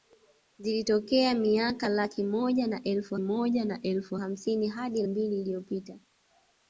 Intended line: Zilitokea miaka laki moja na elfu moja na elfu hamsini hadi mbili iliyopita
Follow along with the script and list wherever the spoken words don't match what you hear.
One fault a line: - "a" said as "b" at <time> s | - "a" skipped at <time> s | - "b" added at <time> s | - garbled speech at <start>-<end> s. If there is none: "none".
none